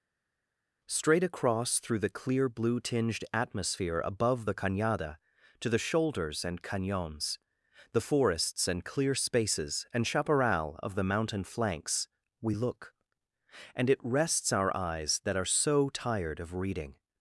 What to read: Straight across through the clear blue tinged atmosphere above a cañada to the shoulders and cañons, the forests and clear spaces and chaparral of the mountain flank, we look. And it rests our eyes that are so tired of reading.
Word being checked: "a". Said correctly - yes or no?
no